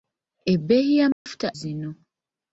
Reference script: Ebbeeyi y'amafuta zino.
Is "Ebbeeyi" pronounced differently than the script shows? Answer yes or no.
no